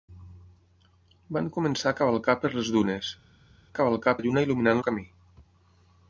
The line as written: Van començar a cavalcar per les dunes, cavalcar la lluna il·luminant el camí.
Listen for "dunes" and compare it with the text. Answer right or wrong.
right